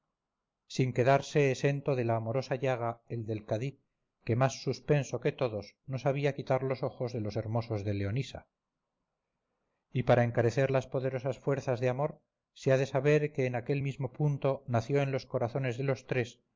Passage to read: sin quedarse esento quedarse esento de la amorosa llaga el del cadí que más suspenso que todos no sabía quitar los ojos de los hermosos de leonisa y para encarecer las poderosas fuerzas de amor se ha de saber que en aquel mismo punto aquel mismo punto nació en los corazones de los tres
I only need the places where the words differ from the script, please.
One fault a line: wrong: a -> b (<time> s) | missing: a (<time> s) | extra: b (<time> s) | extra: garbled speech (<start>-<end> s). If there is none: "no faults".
missing: quedarse esento (1.9 s)
missing: aquel mismo punto (14.6 s)